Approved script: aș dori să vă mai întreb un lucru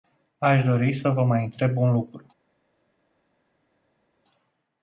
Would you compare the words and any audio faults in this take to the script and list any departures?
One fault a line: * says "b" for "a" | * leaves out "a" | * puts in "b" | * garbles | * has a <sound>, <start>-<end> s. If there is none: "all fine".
all fine